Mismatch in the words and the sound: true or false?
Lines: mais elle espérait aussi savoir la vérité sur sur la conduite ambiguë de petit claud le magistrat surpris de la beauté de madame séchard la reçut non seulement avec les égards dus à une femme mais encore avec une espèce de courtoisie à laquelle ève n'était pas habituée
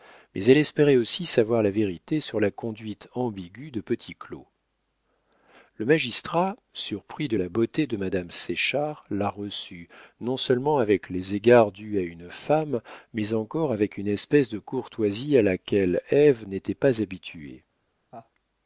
true